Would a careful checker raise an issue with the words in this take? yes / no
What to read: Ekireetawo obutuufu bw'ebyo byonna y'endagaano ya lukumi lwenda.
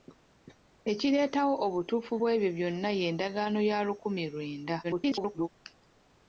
yes